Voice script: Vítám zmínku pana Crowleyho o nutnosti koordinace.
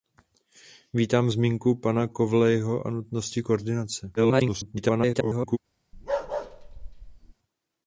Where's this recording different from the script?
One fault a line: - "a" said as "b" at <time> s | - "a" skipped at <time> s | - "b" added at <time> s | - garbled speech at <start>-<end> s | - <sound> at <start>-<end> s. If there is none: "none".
- garbled speech at 4.2-5.6 s
- bark at 5.9-7.3 s